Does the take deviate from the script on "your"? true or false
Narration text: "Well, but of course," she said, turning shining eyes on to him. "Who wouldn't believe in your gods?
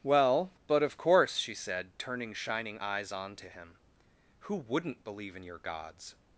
false